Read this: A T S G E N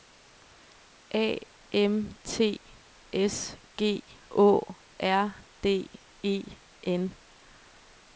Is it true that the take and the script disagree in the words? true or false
true